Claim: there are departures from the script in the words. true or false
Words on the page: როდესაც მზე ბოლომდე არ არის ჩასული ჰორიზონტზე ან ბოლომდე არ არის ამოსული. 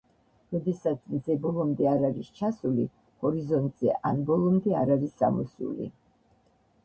false